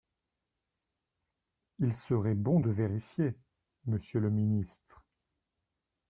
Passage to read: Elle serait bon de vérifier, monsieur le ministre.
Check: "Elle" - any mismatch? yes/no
yes